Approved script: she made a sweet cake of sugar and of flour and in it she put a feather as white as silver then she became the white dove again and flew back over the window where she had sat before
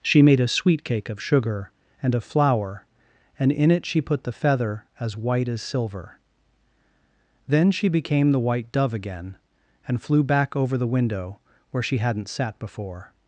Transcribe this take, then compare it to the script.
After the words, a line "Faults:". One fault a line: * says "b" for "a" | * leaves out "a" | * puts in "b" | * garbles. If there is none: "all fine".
she made a sweet cake of sugar and of flour and in it she put the feather as white as silver then she became the white dove again and flew back over the window where she hadn't sat before
Faults:
* says "the" for "a"
* says "hadn't" for "had"